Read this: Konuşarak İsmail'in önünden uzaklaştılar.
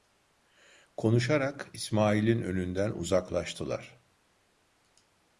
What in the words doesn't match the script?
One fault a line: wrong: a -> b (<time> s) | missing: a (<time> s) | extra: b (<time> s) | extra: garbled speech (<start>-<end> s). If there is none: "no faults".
no faults